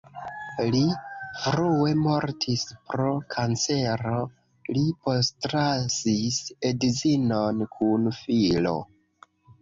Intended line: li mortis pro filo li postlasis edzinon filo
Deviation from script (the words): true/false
true